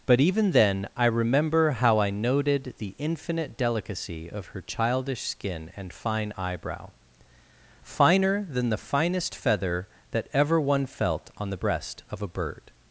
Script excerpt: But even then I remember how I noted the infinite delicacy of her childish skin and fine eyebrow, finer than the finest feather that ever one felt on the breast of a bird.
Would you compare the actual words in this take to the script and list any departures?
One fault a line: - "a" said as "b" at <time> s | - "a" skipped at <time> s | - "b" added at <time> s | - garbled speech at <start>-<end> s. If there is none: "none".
none